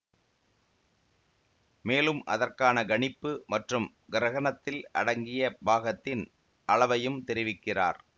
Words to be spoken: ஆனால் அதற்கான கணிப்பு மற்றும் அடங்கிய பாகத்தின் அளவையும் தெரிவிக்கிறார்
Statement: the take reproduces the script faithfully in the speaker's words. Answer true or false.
false